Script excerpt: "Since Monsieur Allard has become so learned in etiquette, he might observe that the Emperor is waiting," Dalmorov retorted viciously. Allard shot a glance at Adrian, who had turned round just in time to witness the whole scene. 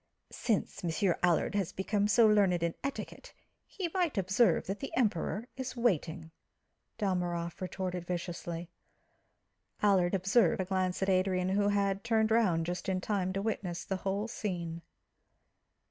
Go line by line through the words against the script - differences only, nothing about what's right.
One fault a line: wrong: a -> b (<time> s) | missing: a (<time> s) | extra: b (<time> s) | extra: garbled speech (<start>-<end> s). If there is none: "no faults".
wrong: shot -> observe (10.1 s)